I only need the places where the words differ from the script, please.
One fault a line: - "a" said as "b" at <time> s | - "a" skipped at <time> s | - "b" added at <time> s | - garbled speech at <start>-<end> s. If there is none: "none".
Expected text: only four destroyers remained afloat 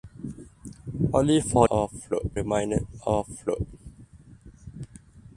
- "destroyers" said as "afloat" at 1.7 s